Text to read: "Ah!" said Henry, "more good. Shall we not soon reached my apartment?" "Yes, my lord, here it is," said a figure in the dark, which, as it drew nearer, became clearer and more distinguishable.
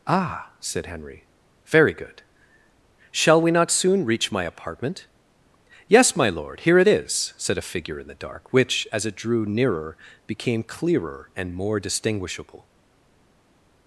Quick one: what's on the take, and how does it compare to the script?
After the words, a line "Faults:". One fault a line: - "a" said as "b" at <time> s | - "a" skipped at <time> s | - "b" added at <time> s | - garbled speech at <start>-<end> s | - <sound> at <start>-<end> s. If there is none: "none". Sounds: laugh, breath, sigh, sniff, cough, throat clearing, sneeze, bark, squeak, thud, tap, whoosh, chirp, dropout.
"Ah!" said Henry, "very good. Shall we not soon reach my apartment?" "Yes, my lord, here it is," said a figure in the dark, which, as it drew nearer, became clearer and more distinguishable.
Faults:
- "more" said as "very" at 1.7 s
- "reached" said as "reach" at 4.1 s